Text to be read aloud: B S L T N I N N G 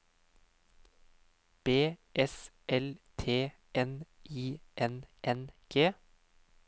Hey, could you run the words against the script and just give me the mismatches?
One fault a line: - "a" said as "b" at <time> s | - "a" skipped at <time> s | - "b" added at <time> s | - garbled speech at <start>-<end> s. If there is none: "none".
none